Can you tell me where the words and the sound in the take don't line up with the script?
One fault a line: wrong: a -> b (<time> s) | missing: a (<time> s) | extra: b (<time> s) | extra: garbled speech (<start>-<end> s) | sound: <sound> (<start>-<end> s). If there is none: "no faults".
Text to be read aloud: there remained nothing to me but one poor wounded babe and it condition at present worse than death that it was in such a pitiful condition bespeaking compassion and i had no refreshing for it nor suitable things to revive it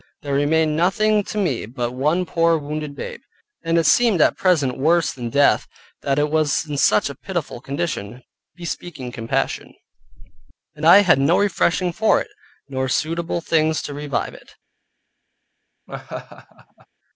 wrong: condition -> seemed (3.9 s)
sound: laugh (15.9-16.9 s)